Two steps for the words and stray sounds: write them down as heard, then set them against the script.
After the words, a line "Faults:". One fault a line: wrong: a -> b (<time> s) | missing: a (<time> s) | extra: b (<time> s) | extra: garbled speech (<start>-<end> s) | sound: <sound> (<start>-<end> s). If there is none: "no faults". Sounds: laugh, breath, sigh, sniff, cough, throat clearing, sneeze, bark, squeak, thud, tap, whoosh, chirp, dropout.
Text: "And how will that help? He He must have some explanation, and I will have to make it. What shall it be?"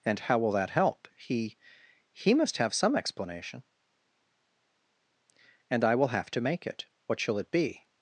"And how will that help? He He must have some explanation, and I will have to make it. What shall it be?"
Faults:
no faults